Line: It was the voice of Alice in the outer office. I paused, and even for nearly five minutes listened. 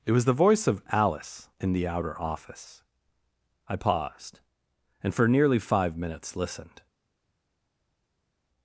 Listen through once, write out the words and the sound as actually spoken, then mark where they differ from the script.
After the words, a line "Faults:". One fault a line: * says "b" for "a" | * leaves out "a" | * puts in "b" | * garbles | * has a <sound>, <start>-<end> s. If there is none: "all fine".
It was the voice of Alice in the outer office. I paused, and for nearly five minutes listened.
Faults:
* leaves out "even"